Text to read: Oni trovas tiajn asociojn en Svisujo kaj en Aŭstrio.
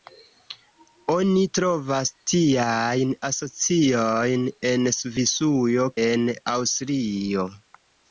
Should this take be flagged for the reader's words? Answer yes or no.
yes